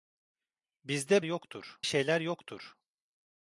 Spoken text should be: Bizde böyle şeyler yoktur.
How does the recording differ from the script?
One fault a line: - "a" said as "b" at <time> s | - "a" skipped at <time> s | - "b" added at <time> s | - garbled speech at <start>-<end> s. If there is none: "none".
- "böyle" said as "yoktur" at 1.2 s